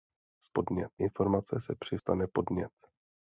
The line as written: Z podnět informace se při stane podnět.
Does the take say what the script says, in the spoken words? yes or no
yes